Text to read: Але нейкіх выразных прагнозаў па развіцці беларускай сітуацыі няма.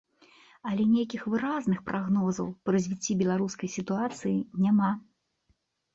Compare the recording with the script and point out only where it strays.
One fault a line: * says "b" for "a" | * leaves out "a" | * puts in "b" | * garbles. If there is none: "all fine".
all fine